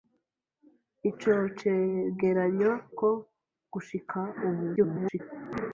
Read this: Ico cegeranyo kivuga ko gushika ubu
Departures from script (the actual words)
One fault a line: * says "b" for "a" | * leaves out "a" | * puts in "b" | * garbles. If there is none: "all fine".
* leaves out "kivuga"
* garbles